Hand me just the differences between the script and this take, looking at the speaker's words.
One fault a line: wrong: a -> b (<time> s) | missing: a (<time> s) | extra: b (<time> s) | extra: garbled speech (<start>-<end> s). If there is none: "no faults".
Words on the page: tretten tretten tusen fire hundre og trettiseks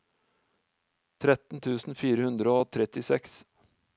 missing: tretten (1.6 s)